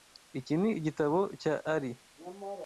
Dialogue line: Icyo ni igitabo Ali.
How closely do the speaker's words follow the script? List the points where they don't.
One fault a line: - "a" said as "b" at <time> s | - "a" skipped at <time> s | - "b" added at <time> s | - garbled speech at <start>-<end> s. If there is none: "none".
- "Icyo" said as "Iki" at 0.4 s
- "cya" added at 1.4 s